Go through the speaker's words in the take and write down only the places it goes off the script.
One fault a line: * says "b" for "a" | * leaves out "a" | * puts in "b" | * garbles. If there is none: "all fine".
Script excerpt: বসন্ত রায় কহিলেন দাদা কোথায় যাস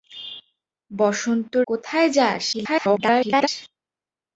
* leaves out "রায় কহিলেন দাদা"
* garbles